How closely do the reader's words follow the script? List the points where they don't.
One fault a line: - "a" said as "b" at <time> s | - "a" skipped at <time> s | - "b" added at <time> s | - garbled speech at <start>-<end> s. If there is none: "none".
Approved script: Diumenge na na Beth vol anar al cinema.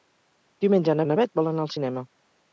none